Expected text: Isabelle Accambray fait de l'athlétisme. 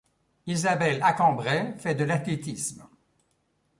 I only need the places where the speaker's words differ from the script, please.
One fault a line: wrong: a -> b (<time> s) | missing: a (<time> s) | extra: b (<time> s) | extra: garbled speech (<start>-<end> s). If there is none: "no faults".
no faults